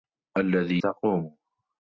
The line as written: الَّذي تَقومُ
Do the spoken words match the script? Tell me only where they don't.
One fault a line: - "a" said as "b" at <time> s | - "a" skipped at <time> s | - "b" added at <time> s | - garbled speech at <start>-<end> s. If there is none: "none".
none